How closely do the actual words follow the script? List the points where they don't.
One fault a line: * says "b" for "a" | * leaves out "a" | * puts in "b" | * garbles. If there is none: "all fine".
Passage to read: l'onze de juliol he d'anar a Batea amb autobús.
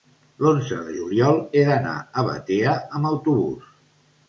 all fine